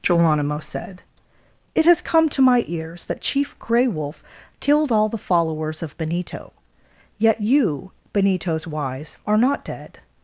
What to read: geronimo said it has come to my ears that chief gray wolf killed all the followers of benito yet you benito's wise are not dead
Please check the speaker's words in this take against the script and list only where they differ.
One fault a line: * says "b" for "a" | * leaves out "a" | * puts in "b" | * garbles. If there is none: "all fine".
all fine